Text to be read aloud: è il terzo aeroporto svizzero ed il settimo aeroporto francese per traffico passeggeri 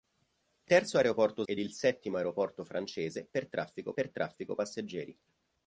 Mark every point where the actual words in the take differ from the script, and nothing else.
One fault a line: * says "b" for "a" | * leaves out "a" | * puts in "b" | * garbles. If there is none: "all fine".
* leaves out "il"
* leaves out "svizzero"
* puts in "per traffico"